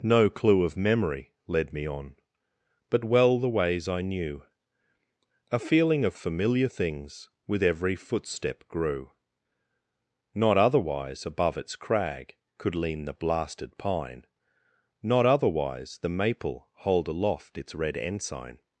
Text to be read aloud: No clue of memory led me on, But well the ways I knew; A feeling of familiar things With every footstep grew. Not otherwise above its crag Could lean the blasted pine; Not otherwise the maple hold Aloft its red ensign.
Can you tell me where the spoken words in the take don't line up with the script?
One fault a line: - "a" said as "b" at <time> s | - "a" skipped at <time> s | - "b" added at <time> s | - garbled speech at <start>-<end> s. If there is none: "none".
none